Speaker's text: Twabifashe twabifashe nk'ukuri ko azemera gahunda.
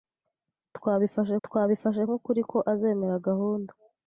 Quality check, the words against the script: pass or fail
pass